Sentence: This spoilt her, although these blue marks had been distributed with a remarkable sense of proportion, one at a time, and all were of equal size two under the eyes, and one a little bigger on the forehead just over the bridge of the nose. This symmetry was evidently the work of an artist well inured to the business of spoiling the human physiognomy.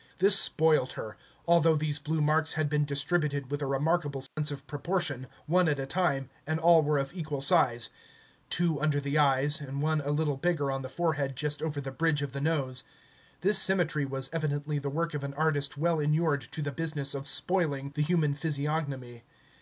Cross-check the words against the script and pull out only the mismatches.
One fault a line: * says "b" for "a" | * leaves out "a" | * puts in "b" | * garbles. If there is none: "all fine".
all fine